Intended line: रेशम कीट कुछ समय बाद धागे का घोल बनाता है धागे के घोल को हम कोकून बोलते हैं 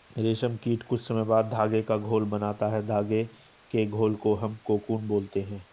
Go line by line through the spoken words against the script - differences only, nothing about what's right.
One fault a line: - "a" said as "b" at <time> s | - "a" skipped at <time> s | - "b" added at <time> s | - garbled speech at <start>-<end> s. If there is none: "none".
none